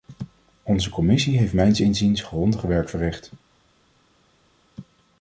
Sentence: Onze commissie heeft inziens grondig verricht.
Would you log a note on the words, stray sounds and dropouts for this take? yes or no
yes